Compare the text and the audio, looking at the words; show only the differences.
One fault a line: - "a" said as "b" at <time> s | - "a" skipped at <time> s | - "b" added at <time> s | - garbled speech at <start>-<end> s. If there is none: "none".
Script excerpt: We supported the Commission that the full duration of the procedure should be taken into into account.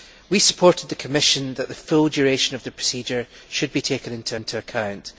none